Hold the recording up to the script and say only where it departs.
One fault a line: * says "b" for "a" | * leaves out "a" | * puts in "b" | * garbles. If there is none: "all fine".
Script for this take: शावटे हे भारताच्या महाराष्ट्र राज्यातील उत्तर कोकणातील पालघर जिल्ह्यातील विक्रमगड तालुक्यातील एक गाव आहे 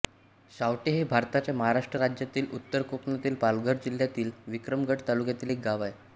all fine